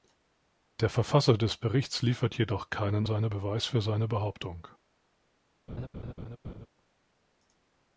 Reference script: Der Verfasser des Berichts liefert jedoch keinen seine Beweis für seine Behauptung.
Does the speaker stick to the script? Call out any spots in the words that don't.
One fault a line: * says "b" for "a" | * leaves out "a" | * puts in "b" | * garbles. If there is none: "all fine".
all fine